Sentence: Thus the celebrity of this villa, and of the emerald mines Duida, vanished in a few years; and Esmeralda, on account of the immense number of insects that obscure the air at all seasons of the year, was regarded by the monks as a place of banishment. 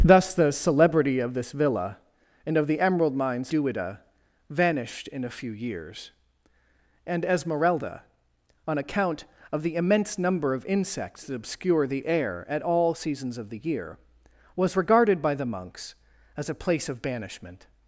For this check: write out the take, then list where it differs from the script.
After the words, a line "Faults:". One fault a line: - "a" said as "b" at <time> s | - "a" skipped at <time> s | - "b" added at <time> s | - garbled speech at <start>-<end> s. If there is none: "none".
Thus the celebrity of this villa, and of the emerald mines Duida, vanished in a few years; and Esmeralda, on account of the immense number of insects that obscure the air at all seasons of the year, was regarded by the monks as a place of banishment.
Faults:
none